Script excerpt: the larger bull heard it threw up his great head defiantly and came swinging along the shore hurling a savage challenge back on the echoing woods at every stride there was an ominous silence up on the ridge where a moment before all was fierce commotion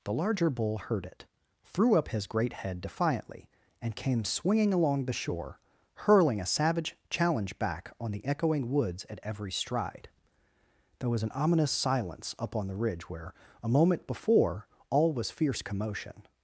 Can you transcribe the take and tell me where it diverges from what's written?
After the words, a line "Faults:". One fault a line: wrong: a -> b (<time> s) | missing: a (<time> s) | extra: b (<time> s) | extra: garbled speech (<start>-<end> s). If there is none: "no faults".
the larger bull heard it threw up his great head defiantly and came swinging along the shore hurling a savage challenge back on the echoing woods at every stride there was an ominous silence up on the ridge where a moment before all was fierce commotion
Faults:
no faults